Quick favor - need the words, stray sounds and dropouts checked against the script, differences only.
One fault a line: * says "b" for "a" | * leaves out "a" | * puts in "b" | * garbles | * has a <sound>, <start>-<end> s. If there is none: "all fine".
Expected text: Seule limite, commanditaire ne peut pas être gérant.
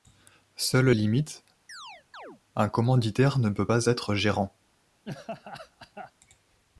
* has a chirp, 1.7-2.4 s
* puts in "un"
* has a laugh, 5.0-6.1 s